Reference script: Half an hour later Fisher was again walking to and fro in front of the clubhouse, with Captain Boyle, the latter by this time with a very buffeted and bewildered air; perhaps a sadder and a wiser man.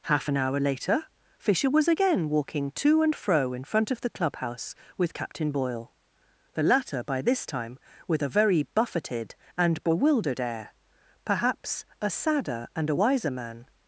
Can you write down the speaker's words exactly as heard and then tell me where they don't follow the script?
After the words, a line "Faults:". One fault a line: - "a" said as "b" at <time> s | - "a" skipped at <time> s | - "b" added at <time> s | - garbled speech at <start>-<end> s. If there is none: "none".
Half an hour later Fisher was again walking to and fro in front of the clubhouse, with Captain Boyle, the latter by this time with a very buffeted and bewildered air; perhaps a sadder and a wiser man.
Faults:
none